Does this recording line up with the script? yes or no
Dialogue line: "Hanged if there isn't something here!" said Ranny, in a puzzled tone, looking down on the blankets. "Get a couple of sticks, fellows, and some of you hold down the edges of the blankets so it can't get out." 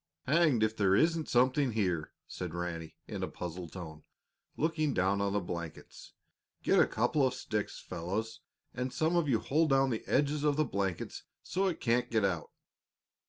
yes